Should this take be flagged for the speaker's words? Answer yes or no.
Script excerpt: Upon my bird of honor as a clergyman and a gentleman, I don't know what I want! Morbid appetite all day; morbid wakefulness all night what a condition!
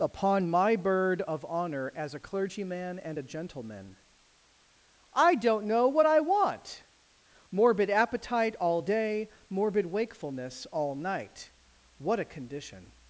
no